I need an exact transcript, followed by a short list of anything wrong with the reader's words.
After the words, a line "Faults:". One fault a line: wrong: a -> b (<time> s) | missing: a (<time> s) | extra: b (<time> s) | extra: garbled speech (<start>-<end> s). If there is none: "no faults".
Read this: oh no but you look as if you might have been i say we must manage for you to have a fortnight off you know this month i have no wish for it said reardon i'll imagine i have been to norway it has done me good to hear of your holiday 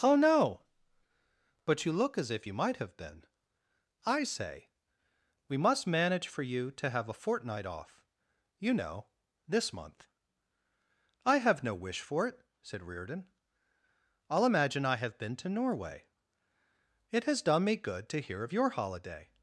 oh no but you look as if you might have been i say we must manage for you to have a fortnight off you know this month i have no wish for it said reardon i'll imagine i have been to norway it has done me good to hear of your holiday
Faults:
no faults